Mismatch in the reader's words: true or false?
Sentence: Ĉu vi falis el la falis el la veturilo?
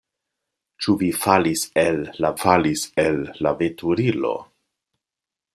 false